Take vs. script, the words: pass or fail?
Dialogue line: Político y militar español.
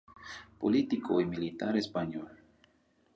pass